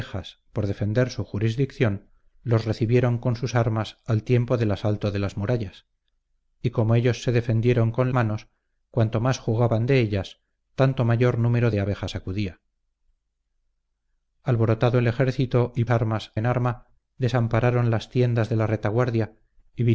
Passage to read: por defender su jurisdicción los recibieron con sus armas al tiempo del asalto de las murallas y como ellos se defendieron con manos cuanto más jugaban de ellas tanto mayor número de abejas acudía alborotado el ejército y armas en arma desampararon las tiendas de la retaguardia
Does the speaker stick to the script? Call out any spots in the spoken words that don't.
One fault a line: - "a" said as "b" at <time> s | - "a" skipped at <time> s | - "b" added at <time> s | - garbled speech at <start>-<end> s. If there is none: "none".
none